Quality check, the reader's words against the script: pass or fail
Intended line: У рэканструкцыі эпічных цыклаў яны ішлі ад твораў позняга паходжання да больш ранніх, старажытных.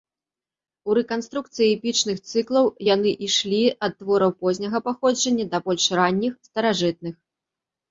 pass